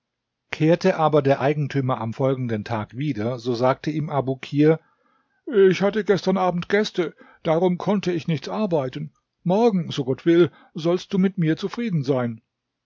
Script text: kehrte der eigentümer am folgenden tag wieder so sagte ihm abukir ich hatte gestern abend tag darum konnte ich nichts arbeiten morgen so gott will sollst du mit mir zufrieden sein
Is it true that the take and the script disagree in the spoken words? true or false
true